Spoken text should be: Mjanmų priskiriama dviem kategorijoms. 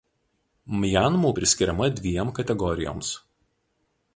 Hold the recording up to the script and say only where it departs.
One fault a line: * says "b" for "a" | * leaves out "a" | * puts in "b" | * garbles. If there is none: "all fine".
all fine